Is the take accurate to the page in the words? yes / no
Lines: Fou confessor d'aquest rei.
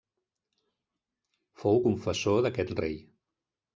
yes